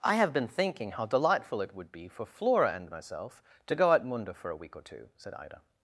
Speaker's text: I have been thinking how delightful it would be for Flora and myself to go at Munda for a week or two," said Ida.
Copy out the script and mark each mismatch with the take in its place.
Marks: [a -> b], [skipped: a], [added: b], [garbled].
I have been thinking how delightful it would be for Flora and myself to go at Munda for a week or two," said Ida.